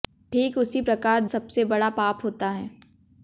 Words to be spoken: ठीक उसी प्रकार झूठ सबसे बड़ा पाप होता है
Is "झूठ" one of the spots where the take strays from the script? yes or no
yes